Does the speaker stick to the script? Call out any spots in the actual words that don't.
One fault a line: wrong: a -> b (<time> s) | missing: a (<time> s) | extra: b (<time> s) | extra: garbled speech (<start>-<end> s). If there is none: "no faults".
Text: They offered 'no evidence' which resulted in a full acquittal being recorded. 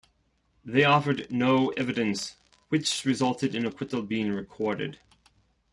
missing: full (3.7 s)